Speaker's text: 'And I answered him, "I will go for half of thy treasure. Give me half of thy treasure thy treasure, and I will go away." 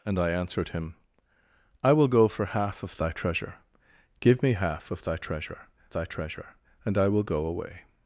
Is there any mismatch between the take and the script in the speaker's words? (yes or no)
no